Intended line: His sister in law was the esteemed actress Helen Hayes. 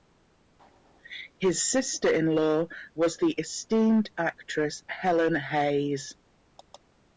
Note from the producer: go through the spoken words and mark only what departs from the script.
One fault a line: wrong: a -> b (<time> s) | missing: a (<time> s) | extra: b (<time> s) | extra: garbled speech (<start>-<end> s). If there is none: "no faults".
no faults